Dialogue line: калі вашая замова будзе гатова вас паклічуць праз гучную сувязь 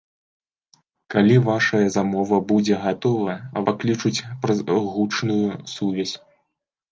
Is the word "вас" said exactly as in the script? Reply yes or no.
no